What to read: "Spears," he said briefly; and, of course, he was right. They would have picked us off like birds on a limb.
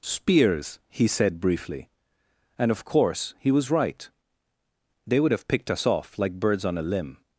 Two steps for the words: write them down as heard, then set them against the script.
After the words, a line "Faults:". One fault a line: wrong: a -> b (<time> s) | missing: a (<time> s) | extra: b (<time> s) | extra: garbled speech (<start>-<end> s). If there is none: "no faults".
"Spears," he said briefly; and, of course, he was right. They would have picked us off like birds on a limb.
Faults:
no faults